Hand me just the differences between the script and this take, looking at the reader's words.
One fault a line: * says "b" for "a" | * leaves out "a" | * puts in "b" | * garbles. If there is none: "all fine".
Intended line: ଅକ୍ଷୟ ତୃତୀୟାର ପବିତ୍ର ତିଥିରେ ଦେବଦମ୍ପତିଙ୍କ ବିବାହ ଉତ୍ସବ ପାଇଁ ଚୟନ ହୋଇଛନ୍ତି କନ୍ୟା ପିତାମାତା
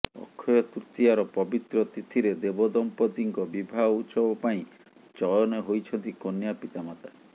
all fine